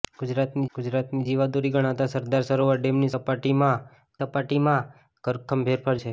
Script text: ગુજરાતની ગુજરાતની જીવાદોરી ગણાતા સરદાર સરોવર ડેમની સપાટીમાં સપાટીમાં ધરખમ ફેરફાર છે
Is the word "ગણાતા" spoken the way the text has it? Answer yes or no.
yes